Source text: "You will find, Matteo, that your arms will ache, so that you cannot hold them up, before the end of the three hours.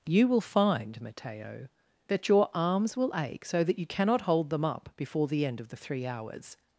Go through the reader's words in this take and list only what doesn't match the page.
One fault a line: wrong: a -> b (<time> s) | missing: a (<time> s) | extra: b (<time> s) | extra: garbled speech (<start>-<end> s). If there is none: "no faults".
no faults